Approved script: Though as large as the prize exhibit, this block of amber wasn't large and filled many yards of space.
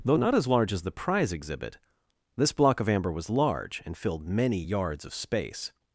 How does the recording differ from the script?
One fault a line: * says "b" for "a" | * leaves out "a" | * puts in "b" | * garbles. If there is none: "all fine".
* puts in "not"
* says "was" for "wasn't"